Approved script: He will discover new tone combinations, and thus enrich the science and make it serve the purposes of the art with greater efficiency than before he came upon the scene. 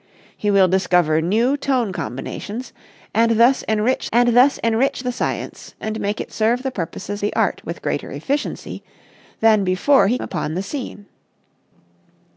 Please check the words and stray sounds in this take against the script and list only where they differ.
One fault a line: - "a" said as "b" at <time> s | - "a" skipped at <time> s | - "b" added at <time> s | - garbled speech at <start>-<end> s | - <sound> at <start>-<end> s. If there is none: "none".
- "and thus enrich" added at 4.1 s
- "of" skipped at 7.2 s
- "came" skipped at 10.2 s